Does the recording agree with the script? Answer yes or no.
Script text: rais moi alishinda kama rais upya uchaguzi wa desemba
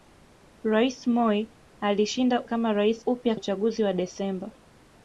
yes